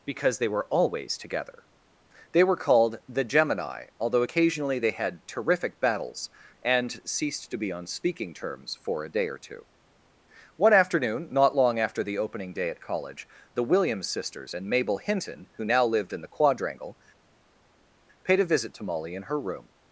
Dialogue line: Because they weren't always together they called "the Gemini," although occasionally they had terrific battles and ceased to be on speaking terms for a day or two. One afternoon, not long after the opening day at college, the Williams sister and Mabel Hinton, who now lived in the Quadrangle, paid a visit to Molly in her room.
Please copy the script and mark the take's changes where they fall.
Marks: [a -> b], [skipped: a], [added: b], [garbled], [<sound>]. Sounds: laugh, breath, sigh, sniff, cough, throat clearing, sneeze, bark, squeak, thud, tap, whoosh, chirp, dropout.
Because they [weren't -> were] always together they [added: were] called "the Gemini," although occasionally they had terrific battles and ceased to be on speaking terms for a day or two. One afternoon, not long after the opening day at college, the Williams [sister -> sisters] and Mabel Hinton, who now lived in the Quadrangle, paid a visit to Molly in her room.